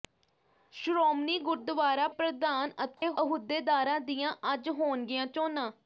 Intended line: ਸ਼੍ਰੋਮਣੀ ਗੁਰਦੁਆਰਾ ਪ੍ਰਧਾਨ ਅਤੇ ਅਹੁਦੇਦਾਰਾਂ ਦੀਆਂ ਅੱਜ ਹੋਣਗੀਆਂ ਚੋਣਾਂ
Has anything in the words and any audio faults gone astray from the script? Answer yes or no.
yes